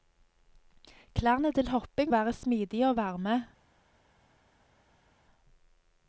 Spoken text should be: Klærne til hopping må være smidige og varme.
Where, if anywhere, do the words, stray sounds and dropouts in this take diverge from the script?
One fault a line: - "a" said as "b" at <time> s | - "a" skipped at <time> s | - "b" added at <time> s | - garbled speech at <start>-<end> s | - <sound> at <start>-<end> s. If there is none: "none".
- "må" skipped at 2.1 s